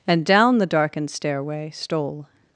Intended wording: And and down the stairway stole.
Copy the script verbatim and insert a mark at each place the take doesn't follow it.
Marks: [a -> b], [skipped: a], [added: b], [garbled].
And [skipped: and] down the [added: darkened] stairway stole.